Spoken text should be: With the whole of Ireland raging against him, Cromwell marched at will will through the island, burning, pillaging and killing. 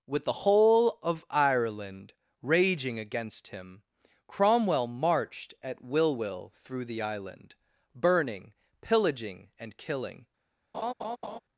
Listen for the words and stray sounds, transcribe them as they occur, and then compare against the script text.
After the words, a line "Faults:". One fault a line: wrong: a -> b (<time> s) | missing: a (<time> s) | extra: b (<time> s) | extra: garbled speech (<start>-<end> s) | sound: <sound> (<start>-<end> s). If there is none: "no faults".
With the whole of Ireland raging against him, Cromwell marched at will will through the island, burning, pillaging and killing.
Faults:
sound: laugh (10.7-11.4 s)